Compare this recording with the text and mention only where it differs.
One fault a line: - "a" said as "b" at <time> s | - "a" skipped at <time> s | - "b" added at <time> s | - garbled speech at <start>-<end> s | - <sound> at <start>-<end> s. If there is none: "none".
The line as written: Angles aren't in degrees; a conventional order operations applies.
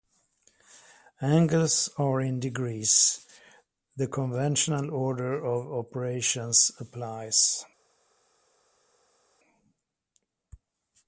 - "aren't" said as "are" at 2.0 s
- "a" said as "the" at 4.0 s
- "of" added at 5.5 s